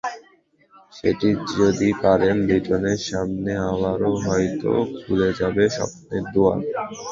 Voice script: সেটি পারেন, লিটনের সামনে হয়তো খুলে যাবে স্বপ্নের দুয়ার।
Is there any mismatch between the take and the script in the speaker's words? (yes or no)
yes